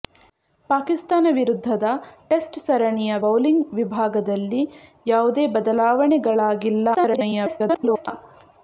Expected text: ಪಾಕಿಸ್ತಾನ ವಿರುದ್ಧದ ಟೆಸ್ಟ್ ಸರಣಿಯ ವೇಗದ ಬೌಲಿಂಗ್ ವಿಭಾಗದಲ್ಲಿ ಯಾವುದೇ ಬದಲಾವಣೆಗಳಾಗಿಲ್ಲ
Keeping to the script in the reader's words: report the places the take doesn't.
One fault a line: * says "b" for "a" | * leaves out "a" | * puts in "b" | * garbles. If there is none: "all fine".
* leaves out "ವೇಗದ"
* garbles